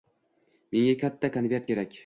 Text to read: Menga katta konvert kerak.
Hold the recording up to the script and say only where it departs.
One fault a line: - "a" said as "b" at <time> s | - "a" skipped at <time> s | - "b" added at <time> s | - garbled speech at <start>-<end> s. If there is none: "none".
none